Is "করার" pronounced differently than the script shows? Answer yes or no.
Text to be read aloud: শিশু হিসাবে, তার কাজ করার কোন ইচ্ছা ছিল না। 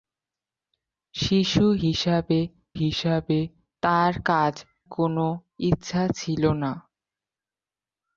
yes